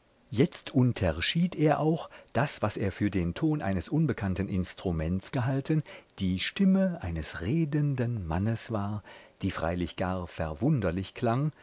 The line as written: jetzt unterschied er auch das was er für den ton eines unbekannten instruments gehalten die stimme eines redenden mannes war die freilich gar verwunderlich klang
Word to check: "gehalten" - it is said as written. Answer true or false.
true